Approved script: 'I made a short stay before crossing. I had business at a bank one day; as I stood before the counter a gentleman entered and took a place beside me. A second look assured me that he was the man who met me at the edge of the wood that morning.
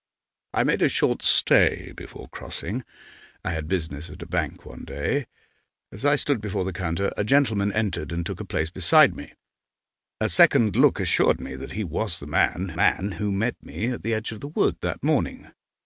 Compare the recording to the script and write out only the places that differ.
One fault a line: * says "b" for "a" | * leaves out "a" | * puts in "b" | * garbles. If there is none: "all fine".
* puts in "man"